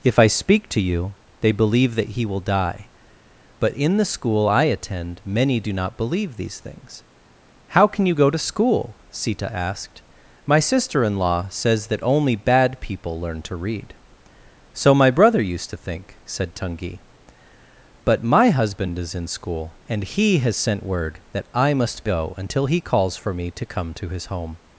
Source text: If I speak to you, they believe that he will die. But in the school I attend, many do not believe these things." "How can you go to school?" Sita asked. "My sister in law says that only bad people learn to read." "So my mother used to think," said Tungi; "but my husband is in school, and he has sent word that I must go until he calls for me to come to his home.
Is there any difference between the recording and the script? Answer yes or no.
yes